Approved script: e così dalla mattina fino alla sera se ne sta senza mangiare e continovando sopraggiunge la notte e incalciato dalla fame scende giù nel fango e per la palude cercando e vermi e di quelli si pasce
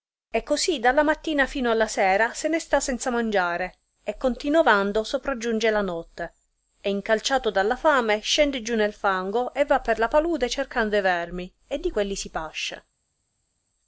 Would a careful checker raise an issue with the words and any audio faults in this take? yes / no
yes